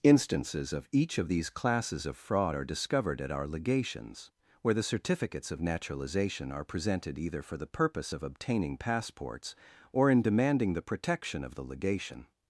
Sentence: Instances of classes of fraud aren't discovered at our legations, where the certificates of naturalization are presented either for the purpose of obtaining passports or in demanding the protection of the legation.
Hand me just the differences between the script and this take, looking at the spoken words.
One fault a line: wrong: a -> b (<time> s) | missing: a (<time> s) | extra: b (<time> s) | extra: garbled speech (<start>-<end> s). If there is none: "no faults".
extra: each of these (0.9 s)
wrong: aren't -> are (2.5 s)